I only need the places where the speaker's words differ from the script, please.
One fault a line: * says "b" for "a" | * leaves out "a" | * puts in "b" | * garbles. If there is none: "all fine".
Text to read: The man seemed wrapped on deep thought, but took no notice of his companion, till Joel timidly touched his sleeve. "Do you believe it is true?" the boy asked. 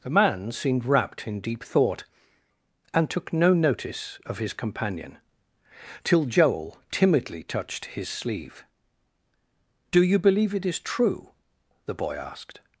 * says "in" for "on"
* says "and" for "but"